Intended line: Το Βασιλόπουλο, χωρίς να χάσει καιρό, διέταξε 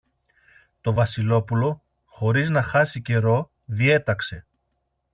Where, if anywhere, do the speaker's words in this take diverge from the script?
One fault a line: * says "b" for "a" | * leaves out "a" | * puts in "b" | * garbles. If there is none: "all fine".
all fine